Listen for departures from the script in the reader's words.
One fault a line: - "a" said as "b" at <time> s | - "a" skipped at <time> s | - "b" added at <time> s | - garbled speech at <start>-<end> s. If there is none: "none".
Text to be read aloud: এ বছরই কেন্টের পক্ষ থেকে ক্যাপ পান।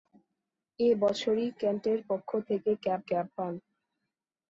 - "ক্যাপ" added at 3.1 s